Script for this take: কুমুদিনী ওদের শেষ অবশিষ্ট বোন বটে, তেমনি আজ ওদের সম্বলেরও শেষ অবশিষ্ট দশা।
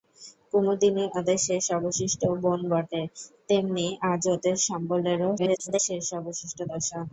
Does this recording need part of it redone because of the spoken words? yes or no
yes